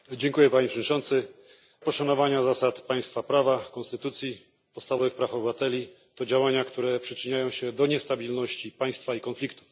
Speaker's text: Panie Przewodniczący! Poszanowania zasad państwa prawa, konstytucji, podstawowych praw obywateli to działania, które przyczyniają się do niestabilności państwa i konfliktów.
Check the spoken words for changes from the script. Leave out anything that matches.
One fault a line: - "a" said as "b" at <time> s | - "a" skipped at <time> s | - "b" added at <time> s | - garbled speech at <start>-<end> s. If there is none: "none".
none